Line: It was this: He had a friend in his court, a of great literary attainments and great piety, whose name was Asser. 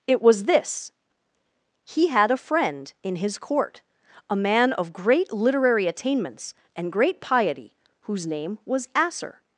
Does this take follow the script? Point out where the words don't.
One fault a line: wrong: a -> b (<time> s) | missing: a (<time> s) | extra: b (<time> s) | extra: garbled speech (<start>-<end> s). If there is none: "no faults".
extra: man (4.3 s)